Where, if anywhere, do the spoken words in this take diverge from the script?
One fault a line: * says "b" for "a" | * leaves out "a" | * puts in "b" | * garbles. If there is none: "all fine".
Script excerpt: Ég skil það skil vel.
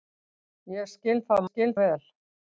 all fine